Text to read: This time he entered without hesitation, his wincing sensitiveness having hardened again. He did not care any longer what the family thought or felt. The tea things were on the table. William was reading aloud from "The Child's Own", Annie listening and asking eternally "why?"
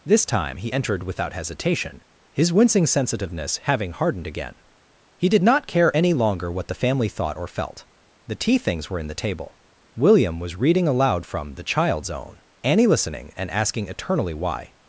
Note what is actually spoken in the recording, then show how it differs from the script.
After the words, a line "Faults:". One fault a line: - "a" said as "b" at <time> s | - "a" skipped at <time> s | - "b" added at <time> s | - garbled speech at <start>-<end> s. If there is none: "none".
This time he entered without hesitation, his wincing sensitiveness having hardened again. He did not care any longer what the family thought or felt. The tea things were in the table. William was reading aloud from "The Child's Own", Annie listening and asking eternally "why?"
Faults:
- "on" said as "in" at 9.0 s